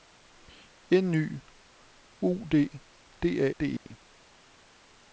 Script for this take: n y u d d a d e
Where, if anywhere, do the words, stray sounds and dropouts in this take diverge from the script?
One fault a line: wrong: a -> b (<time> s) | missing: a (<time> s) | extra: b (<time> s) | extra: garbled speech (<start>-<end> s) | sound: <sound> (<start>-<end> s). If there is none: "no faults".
sound: dropout (3.8-3.9 s)